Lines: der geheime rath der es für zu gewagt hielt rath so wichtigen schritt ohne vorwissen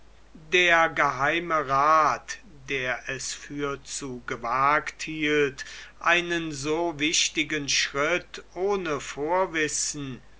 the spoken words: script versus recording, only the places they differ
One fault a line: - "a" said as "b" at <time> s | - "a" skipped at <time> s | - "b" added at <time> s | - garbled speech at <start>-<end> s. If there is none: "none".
- "rath" said as "einen" at 6.0 s